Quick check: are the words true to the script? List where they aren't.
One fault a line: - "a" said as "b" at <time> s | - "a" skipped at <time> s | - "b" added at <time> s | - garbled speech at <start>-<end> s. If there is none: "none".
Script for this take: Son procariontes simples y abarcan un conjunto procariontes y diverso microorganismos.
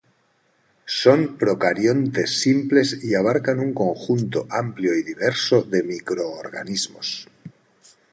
- "procariontes" said as "amplio" at 4.5 s
- "de" added at 5.6 s